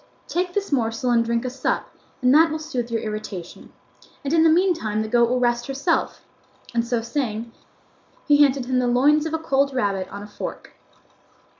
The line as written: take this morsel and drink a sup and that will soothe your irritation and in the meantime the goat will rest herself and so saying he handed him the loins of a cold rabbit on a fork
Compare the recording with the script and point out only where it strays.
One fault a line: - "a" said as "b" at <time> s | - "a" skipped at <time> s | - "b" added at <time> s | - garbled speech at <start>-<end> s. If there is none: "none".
none